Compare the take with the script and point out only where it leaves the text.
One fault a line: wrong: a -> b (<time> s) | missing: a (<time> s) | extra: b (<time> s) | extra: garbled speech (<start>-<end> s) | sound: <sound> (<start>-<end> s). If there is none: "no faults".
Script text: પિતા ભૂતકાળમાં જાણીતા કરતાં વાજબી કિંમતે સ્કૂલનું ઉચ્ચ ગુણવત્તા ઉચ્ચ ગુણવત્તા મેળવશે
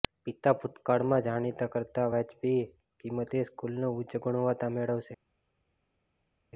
missing: ઉચ્ચ ગુણવત્તા (4.7 s)